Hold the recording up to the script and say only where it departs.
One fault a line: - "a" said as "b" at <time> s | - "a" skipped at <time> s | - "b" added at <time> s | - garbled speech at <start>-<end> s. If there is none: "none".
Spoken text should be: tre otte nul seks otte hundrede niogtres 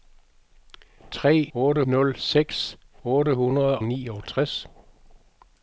none